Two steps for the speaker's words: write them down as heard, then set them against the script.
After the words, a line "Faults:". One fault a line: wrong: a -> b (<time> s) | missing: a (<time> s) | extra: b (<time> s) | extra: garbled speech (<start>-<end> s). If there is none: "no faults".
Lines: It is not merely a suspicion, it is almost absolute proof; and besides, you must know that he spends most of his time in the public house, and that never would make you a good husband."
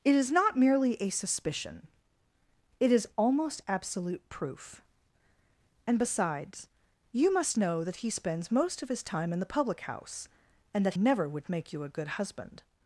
It is not merely a suspicion, it is almost absolute proof; and besides, you must know that he spends most of his time in the public house, and that never would make you a good husband."
Faults:
no faults